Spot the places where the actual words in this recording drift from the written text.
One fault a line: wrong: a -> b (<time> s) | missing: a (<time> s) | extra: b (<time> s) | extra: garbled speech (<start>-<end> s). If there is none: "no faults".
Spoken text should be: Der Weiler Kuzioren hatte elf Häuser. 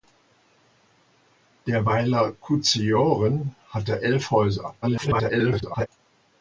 extra: garbled speech (4.8-5.9 s)